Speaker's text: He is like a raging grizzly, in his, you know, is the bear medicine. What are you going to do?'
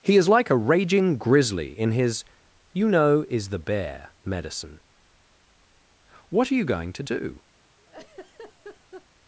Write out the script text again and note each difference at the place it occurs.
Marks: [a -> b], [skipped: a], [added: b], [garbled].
He is like a raging grizzly, in his, you know, is the bear medicine. What are you going to do?'